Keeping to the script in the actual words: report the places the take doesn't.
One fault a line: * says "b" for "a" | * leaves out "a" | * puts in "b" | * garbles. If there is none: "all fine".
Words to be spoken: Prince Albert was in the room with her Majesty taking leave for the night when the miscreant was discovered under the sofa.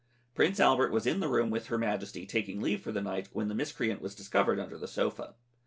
all fine